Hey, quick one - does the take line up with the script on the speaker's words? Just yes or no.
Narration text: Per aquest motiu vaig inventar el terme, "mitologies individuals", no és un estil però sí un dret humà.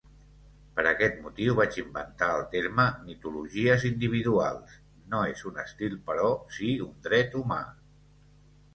yes